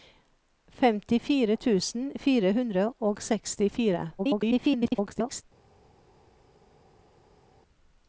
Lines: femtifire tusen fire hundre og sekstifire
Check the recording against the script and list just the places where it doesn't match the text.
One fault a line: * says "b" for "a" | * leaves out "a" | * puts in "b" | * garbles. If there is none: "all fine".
* garbles